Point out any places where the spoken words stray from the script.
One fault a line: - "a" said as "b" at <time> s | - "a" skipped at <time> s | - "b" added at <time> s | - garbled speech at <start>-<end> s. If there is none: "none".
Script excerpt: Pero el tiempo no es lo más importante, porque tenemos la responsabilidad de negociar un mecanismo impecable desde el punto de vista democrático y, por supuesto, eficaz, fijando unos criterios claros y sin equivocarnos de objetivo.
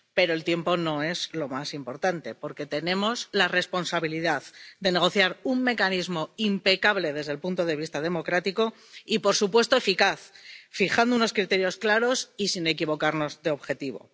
none